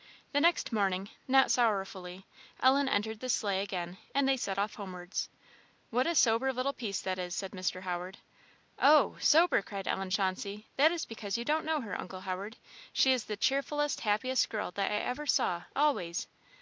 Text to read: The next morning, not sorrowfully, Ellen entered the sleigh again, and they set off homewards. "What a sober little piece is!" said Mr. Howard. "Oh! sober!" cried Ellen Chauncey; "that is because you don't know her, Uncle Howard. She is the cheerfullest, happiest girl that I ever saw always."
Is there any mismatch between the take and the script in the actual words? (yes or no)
yes